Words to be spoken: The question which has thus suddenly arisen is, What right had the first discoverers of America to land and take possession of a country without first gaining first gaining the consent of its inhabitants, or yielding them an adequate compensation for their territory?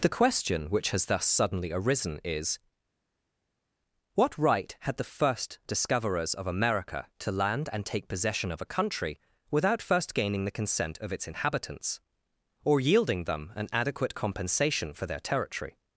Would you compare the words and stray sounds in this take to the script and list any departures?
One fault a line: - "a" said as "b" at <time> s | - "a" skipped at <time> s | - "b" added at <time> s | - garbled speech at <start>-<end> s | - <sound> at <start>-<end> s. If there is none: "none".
- "first gaining" skipped at 10.4 s